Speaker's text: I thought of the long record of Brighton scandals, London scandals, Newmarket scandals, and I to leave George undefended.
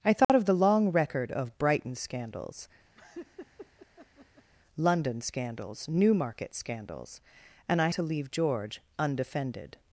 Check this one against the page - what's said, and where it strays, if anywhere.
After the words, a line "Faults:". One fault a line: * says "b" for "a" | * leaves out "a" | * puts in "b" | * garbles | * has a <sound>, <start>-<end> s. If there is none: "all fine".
I thought of the long record of Brighton scandals, London scandals, Newmarket scandals, and I to leave George undefended.
Faults:
* has a dropout, 0.2-0.3 s
* has a laugh, 2.9-4.5 s